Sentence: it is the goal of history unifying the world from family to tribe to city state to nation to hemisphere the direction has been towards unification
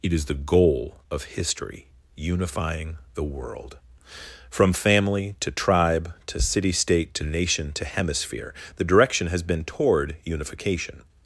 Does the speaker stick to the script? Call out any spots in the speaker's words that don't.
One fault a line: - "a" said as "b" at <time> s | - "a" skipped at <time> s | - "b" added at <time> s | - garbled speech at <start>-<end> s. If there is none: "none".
- "towards" said as "toward" at 9.6 s